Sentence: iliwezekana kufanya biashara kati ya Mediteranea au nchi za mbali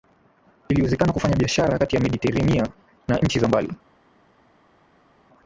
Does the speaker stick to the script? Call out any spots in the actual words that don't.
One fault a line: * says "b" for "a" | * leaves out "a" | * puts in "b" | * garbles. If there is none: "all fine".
* says "na" for "au"